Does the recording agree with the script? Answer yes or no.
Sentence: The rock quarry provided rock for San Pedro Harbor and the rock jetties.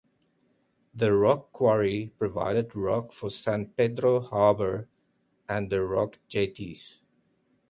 yes